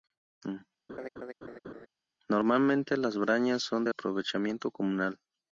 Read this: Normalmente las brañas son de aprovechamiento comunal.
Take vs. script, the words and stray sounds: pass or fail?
fail